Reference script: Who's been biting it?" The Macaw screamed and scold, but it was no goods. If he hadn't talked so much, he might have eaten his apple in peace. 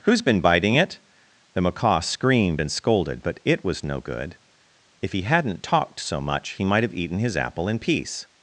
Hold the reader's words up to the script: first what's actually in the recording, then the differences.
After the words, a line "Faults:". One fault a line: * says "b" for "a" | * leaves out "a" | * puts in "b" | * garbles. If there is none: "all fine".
Who's been biting it?" The Macaw screamed and scolded, but it was no good. If he hadn't talked so much, he might have eaten his apple in peace.
Faults:
* says "scolded" for "scold"
* says "good" for "goods"